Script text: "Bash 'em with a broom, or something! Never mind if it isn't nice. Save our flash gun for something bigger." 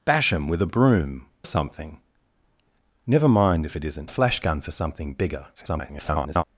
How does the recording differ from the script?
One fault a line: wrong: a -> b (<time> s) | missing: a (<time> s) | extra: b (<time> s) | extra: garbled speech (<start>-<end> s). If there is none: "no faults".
missing: or (1.3 s)
missing: nice Save our (4.1 s)
extra: garbled speech (5.5-6.4 s)